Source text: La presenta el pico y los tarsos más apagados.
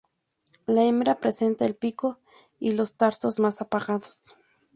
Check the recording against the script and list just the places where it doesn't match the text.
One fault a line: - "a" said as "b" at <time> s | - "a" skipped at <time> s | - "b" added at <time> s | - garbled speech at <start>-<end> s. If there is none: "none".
- "hembra" added at 0.8 s